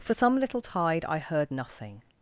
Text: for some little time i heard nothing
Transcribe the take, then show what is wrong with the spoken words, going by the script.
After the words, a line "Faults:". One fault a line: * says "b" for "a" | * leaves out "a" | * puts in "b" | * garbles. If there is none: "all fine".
for some little tide i heard nothing
Faults:
* says "tide" for "time"